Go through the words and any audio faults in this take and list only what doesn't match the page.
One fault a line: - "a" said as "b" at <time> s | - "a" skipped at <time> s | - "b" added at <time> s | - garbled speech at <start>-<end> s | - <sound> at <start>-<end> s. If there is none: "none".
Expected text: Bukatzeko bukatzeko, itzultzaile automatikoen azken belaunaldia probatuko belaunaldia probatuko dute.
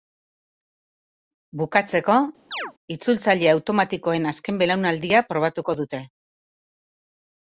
- "bukatzeko" skipped at 2.1 s
- chirp at 2.5-2.7 s
- "belaunaldia probatuko" skipped at 5.8 s